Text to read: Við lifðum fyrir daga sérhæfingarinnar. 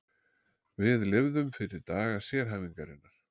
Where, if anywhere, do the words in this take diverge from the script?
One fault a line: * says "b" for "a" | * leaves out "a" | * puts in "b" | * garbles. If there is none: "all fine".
all fine